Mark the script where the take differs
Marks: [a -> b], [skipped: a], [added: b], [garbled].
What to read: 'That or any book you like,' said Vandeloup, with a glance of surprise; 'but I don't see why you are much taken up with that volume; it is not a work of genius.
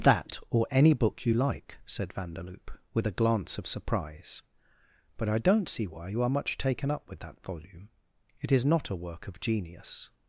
'That or any book you like,' said Vandeloup, with a glance of surprise; 'but I don't see why you are much taken up with that volume; it is not a work of genius.